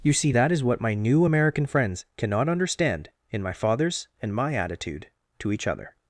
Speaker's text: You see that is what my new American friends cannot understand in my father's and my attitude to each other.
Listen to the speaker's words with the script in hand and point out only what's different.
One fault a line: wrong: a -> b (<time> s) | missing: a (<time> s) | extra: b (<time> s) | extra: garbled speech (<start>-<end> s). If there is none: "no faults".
no faults